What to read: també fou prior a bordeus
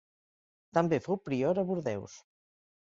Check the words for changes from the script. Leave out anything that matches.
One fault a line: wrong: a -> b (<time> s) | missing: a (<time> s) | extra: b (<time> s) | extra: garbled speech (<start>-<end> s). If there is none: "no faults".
no faults